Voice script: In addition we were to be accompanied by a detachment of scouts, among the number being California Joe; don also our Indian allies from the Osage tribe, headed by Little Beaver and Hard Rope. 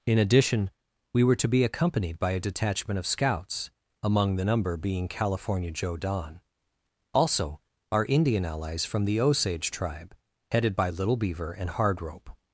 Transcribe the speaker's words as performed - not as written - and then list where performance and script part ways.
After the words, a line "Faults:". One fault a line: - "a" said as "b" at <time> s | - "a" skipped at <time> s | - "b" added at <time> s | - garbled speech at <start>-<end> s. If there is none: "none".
In addition we were to be accompanied by a detachment of scouts, among the number being California Joe; don also our Indian allies from the Osage tribe, headed by Little Beaver and Hard Rope.
Faults:
none